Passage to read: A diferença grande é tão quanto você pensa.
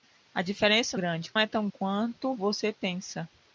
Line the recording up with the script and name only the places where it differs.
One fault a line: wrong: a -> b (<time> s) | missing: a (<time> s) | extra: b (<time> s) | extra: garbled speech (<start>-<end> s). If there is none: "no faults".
no faults